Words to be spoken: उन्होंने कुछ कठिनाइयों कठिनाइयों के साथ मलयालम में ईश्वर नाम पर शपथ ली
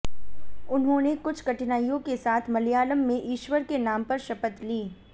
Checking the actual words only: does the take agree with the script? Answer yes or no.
no